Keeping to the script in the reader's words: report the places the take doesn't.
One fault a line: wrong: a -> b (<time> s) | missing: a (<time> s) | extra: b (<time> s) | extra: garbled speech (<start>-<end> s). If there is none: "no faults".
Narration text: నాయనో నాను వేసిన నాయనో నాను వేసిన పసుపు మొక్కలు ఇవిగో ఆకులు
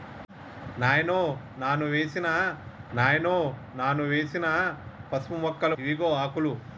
no faults